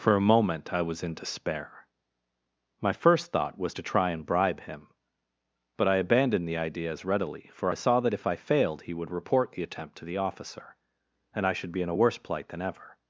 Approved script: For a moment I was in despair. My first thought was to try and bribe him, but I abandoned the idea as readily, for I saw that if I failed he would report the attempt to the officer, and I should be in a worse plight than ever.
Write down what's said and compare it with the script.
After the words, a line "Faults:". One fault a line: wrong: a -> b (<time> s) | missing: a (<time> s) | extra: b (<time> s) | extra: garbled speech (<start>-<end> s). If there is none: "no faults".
For a moment I was in despair. My first thought was to try and bribe him, but I abandoned the idea as readily, for I saw that if I failed he would report the attempt to the officer, and I should be in a worse plight than ever.
Faults:
no faults